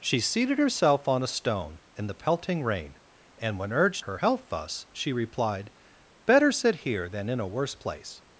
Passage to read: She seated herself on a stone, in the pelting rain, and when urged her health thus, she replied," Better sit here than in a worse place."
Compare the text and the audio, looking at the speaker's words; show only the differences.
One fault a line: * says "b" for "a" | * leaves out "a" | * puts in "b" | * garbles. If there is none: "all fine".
all fine